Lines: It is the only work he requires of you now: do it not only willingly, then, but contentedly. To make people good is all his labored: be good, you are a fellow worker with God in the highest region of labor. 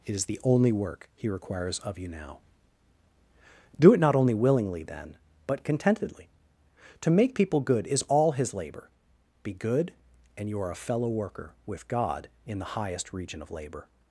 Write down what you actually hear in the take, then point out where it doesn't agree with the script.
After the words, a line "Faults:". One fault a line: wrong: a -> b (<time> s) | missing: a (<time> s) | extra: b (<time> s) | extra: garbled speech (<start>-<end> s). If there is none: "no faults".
It is the only work he requires of you now: do it not only willingly, then, but contentedly. To make people good is all his labor: be good, and you are a fellow worker with God in the highest region of labor.
Faults:
wrong: labored -> labor (8.5 s)
extra: and (10.4 s)